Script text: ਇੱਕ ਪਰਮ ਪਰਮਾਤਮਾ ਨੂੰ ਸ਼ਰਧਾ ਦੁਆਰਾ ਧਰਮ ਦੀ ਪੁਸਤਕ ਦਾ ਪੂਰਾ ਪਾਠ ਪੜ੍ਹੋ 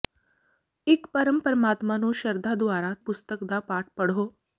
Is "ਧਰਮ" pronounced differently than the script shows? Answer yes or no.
yes